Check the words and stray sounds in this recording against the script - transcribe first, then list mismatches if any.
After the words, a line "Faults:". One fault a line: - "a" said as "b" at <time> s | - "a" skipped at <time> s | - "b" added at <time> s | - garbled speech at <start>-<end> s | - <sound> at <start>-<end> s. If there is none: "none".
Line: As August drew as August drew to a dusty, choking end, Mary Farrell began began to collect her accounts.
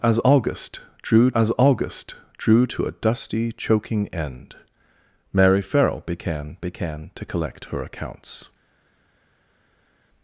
As August drew as August drew to a dusty, choking end, Mary Farrell began began to collect her accounts.
Faults:
none